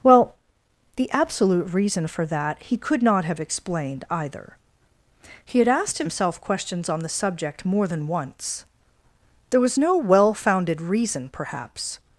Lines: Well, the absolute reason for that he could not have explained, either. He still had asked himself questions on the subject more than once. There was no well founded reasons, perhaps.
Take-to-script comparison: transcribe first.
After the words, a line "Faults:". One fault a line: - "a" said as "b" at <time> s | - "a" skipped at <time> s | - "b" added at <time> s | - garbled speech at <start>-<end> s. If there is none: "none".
Well, the absolute reason for that he could not have explained, either. He had asked himself questions on the subject more than once. There was no well founded reason, perhaps.
Faults:
- "still" skipped at 5.6 s
- "reasons" said as "reason" at 10.8 s